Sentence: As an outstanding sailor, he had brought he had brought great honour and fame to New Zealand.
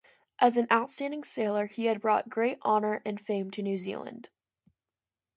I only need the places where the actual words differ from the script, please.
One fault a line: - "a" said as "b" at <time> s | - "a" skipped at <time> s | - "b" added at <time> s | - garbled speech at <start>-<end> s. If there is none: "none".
- "he had brought" skipped at 2.3 s